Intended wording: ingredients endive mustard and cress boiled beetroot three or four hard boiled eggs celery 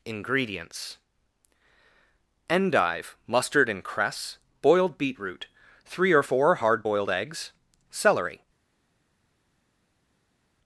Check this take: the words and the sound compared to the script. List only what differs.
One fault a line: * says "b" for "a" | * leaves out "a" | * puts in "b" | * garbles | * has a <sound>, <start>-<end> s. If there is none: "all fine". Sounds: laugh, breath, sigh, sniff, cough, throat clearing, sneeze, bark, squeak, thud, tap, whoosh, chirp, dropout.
all fine